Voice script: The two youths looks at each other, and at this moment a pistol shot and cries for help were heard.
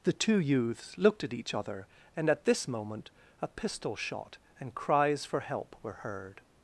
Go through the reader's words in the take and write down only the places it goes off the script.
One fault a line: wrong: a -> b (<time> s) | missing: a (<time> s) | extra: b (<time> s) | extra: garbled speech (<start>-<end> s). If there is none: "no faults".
wrong: looks -> looked (1.0 s)